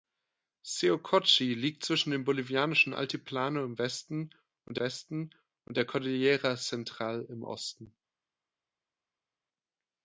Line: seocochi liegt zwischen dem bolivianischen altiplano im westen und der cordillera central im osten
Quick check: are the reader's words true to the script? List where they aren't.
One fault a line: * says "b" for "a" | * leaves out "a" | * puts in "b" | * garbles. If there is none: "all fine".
* puts in "westen und"